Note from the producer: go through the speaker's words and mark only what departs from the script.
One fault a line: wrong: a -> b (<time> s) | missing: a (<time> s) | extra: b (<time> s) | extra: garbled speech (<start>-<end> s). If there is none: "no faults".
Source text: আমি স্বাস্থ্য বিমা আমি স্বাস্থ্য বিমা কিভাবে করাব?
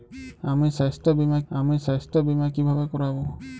no faults